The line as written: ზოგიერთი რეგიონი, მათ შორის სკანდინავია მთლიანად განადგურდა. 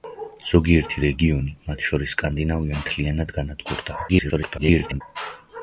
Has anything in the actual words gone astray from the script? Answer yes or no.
yes